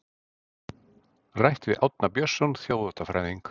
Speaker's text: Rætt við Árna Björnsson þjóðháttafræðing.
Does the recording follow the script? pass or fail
pass